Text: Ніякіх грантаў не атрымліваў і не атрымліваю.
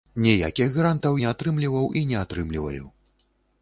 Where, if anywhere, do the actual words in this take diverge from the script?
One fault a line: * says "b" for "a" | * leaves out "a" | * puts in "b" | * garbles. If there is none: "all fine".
all fine